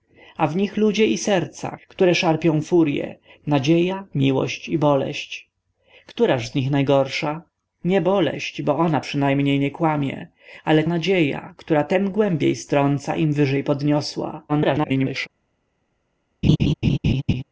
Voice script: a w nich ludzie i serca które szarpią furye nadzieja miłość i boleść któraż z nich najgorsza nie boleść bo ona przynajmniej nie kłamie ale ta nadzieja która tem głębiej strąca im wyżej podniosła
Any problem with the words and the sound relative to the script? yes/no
yes